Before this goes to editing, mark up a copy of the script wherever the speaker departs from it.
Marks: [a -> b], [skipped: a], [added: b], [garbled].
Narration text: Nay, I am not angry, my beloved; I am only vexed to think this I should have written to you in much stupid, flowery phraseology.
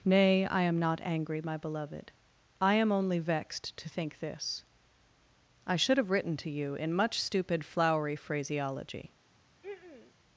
Nay, I am not angry, my beloved; I am only vexed to think this I should have written to you in much stupid, flowery phraseology.